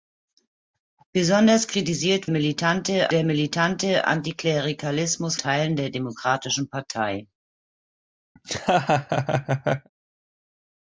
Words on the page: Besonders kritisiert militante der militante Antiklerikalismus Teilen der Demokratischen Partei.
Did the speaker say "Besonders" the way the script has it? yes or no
yes